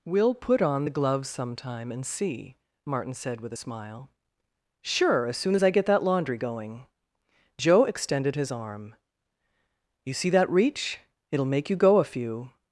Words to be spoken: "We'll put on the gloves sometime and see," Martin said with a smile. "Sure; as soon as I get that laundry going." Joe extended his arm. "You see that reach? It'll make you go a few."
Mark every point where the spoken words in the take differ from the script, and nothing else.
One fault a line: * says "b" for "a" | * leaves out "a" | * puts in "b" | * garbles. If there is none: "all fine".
all fine